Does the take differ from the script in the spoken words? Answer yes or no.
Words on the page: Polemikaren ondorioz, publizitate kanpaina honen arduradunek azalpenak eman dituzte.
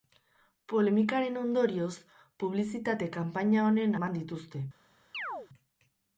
yes